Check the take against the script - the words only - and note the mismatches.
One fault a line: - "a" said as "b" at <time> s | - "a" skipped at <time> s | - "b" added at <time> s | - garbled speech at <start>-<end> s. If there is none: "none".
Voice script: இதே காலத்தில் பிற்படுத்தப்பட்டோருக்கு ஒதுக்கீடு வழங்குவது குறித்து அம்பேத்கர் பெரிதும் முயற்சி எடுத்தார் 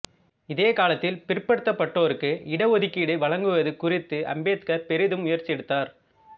- "இட" added at 2.5 s